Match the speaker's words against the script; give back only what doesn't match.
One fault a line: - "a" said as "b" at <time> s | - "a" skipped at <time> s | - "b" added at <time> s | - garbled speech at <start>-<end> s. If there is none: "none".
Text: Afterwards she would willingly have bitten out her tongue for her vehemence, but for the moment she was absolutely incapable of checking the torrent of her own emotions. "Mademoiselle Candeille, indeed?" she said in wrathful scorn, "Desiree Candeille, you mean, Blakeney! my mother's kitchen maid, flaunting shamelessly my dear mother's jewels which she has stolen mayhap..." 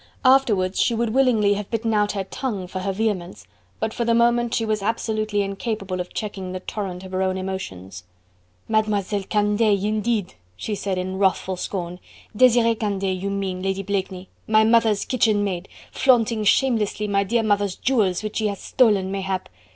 - "Lady" added at 13.6 s